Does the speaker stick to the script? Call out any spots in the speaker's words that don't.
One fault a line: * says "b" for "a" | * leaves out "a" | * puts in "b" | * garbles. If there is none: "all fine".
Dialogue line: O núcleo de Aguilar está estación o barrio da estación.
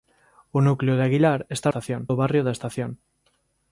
all fine